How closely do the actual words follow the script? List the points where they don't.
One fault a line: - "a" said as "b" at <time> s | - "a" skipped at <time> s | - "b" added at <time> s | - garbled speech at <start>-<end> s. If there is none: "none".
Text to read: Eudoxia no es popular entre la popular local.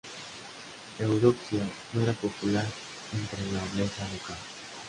- "es" said as "era" at 2.0 s
- "popular" said as "nobleza" at 3.6 s